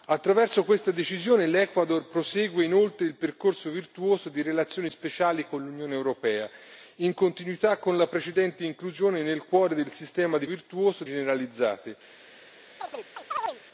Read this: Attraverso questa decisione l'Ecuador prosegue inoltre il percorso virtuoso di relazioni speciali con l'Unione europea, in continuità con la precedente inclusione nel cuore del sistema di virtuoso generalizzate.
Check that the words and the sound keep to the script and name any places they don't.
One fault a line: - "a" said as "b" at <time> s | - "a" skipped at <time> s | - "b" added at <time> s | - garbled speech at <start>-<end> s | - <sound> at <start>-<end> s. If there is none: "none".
- chirp at 12.8-13.6 s